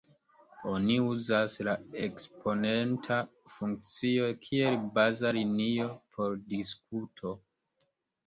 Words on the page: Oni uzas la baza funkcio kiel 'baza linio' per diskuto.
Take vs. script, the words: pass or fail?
fail